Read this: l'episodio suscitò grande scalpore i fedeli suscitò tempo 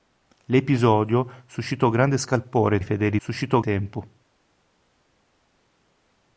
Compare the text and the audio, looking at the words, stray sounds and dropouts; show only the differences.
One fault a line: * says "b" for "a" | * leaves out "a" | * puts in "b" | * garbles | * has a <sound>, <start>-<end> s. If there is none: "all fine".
all fine